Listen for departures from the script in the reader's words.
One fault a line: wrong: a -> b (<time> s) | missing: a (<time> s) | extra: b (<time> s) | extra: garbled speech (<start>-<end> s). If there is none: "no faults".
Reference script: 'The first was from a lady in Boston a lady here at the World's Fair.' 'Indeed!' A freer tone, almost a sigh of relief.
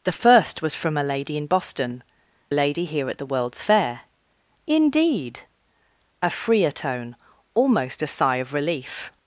no faults